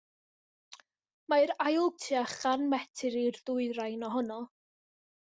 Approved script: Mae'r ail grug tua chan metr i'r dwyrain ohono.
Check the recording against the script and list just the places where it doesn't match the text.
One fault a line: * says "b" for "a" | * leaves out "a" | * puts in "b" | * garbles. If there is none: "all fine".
* leaves out "grug"